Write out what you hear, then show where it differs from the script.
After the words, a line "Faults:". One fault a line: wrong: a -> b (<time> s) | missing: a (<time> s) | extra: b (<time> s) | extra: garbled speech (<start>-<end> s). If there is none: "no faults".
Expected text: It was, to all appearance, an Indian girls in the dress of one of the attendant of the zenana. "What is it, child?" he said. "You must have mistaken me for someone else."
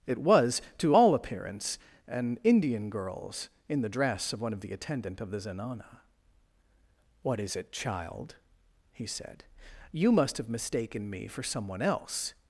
It was, to all appearance, an Indian girls in the dress of one of the attendant of the zenana. "What is it, child?" he said. "You must have mistaken me for someone else."
Faults:
no faults